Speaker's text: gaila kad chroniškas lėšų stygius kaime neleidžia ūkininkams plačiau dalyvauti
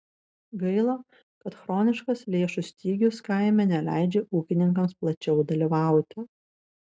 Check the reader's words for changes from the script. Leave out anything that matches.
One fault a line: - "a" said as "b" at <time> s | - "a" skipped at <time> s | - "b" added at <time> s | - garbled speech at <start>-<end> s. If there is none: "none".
none